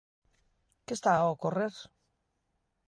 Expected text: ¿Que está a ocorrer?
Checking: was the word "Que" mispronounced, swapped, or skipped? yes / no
no